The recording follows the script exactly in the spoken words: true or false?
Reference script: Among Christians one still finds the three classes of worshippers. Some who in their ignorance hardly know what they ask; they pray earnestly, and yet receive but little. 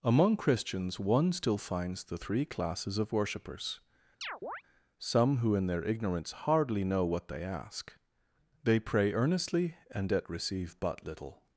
true